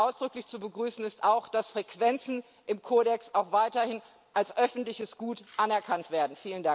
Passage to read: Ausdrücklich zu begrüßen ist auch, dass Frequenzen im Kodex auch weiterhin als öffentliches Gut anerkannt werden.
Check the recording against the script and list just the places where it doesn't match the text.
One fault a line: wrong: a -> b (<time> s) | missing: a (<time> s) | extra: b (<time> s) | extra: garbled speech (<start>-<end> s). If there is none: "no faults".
no faults